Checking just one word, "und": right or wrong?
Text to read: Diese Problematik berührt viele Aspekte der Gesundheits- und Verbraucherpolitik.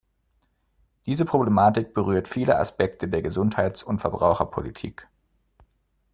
right